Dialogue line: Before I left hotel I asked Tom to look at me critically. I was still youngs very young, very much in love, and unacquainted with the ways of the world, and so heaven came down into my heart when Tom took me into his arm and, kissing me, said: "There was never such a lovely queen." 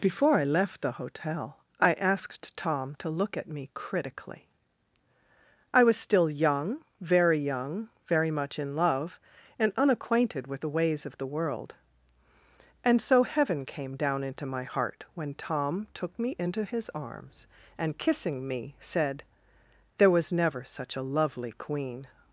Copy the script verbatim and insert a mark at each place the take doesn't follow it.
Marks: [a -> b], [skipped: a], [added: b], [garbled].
Before I left [added: the] hotel I asked Tom to look at me critically. I was still [youngs -> young] very young, very much in love, and unacquainted with the ways of the world, and so heaven came down into my heart when Tom took me into his [arm -> arms] and, kissing me, said: "There was never such a lovely queen."